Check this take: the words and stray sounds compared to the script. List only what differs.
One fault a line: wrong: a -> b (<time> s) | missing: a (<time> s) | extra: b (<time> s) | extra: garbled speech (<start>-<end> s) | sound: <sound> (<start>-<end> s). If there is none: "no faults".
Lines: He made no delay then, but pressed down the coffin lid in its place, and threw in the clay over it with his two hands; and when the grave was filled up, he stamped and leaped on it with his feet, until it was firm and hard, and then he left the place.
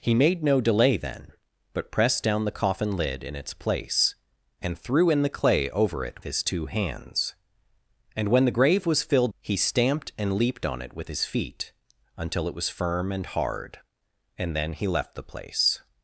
missing: with (6.2 s)
missing: up (9.3 s)